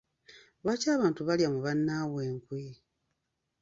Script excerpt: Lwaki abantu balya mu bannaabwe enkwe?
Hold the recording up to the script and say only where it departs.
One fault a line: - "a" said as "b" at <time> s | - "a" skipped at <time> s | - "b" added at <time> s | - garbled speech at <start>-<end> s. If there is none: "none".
none